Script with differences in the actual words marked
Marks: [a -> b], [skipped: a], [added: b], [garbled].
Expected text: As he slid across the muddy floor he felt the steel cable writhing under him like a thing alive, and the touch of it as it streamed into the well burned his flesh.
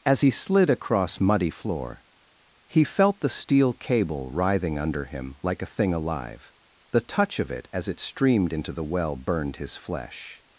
As he slid across [skipped: the] muddy floor he felt the steel cable writhing under him like a thing alive, [skipped: and] the touch of it as it streamed into the well burned his flesh.